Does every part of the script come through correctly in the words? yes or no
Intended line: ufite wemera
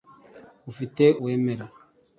yes